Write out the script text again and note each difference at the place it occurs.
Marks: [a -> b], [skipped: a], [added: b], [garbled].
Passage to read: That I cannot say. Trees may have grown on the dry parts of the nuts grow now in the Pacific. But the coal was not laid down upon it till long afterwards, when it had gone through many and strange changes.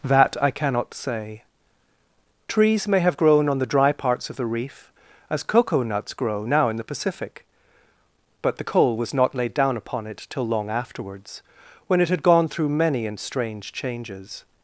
That I cannot say. Trees may have grown on the dry parts of the [added: reef as cocoa] nuts grow now in the Pacific. But the coal was not laid down upon it till long afterwards, when it had gone through many and strange changes.